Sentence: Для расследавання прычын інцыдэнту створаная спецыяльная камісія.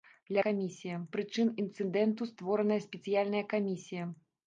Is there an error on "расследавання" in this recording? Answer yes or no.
yes